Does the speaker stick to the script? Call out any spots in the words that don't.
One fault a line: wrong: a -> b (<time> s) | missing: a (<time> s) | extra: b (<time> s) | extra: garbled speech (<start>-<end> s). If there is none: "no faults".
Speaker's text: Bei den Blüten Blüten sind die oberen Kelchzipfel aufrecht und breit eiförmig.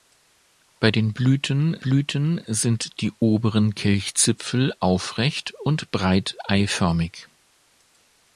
no faults